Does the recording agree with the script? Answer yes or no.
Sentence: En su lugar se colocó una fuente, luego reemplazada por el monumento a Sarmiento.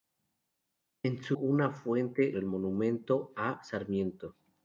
no